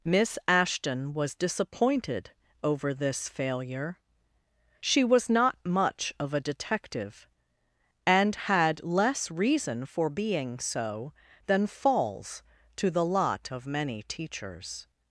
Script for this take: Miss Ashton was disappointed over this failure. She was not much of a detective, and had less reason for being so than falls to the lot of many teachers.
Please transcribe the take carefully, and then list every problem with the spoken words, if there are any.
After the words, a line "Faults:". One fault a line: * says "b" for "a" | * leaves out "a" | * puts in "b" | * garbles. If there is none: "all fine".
Miss Ashton was disappointed over this failure. She was not much of a detective, and had less reason for being so than falls to the lot of many teachers.
Faults:
all fine